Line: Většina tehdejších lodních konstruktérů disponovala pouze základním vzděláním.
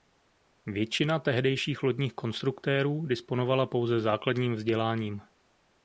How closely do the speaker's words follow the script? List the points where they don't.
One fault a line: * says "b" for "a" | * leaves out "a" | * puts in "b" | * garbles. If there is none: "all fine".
all fine